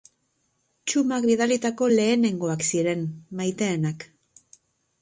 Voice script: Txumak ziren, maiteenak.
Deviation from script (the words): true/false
true